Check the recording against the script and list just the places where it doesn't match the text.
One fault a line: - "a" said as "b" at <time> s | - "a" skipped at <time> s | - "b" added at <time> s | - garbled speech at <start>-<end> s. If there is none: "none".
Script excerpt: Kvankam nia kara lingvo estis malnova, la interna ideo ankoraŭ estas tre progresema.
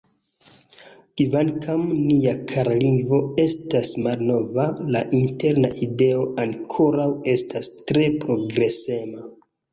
- "estis" said as "estas" at 3.4 s